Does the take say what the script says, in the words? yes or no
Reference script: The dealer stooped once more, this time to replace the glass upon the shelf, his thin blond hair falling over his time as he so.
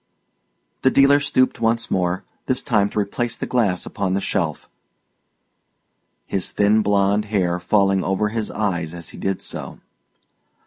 no